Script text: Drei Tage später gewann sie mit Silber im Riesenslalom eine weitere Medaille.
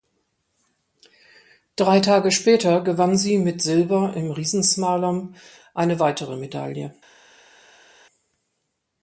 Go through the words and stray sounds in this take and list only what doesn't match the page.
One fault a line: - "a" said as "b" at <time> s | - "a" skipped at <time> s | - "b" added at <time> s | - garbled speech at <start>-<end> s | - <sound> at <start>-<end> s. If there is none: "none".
none